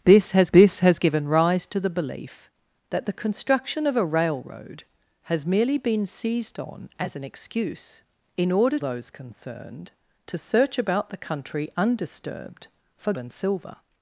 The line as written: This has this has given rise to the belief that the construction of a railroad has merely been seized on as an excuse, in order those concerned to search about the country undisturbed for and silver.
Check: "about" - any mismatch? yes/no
no